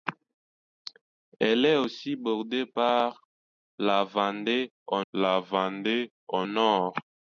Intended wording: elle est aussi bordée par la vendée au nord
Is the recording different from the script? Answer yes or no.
yes